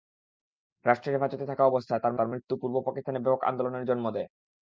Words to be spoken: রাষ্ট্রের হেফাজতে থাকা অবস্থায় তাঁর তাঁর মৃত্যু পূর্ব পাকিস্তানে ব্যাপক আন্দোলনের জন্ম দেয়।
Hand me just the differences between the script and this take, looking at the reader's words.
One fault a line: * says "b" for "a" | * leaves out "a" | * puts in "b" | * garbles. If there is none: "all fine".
all fine